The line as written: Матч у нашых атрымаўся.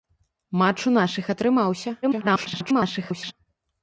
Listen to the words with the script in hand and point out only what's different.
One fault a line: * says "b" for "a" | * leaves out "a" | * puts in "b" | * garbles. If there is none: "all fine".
* garbles